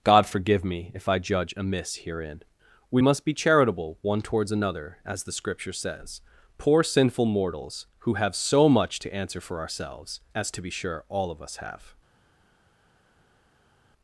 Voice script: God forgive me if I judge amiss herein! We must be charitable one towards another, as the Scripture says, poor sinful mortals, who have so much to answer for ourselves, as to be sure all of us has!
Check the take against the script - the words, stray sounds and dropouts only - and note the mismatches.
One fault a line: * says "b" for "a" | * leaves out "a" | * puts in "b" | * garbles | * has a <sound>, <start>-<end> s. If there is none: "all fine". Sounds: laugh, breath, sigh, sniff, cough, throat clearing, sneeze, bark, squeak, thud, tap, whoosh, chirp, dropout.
* says "have" for "has"